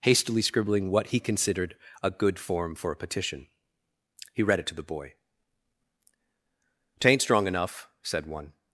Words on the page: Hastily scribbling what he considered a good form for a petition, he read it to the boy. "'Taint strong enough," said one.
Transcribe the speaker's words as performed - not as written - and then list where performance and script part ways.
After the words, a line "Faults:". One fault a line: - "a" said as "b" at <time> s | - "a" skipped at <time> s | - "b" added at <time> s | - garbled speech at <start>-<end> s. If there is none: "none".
Hastily scribbling what he considered a good form for a petition, he read it to the boy. "'Taint strong enough," said one.
Faults:
none